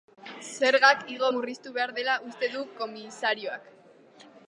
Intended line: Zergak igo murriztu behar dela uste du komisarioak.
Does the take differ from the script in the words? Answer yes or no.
no